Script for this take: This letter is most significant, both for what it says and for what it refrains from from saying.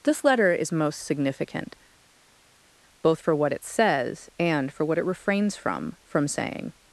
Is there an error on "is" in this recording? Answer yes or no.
no